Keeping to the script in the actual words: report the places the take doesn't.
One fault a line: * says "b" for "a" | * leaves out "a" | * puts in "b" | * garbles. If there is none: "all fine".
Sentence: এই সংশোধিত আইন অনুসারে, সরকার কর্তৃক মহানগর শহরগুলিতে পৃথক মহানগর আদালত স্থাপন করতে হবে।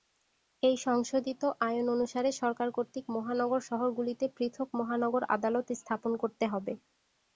all fine